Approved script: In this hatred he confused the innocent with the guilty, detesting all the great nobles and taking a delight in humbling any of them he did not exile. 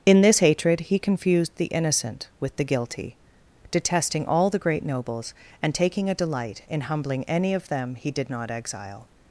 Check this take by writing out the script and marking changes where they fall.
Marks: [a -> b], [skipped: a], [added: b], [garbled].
In this hatred he confused the innocent with the guilty, detesting all the great nobles and taking a delight in humbling any of them he did not exile.